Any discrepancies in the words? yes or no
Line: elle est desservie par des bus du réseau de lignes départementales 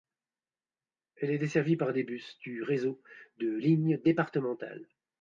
no